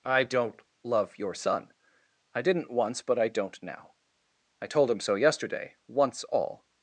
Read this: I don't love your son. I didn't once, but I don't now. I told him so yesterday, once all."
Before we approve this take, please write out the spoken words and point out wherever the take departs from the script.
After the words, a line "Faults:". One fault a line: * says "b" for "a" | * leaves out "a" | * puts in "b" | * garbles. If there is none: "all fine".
I don't love your son. I didn't once, but I don't now. I told him so yesterday, once all."
Faults:
all fine